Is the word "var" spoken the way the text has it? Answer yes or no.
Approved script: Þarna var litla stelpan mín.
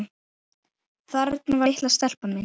no